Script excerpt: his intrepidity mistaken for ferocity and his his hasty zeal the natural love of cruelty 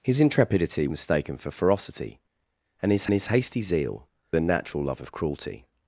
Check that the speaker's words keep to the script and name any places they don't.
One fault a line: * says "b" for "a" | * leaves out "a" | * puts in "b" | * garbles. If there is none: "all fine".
all fine